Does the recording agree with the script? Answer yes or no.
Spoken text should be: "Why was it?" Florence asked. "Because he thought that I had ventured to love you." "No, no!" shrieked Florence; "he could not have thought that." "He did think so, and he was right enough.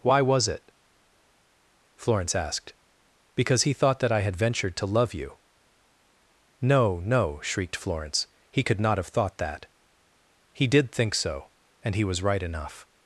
yes